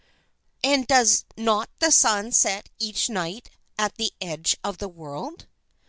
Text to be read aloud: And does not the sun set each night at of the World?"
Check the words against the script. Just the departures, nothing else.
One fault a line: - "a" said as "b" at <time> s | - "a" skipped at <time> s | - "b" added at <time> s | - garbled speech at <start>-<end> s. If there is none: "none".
- "the edge" added at 4.0 s